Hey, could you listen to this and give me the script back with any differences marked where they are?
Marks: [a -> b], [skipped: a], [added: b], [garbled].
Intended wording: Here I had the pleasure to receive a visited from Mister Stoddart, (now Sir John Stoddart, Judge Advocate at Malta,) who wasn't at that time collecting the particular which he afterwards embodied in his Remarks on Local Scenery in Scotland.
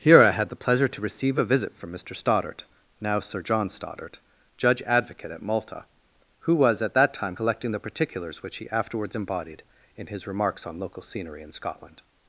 Here I had the pleasure to receive a [visited -> visit] from Mister Stoddart, (now Sir John Stoddart, Judge Advocate at Malta,) who [wasn't -> was] at that time collecting the [particular -> particulars] which he afterwards embodied in his Remarks on Local Scenery in Scotland.